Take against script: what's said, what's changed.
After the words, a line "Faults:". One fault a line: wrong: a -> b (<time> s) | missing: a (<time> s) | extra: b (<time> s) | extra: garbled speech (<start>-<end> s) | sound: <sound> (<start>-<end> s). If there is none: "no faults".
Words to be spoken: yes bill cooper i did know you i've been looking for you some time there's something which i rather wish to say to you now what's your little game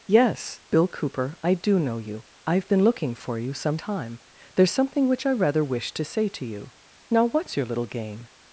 yes bill cooper i do know you i've been looking for you some time there's something which i rather wish to say to you now what's your little game
Faults:
wrong: did -> do (1.5 s)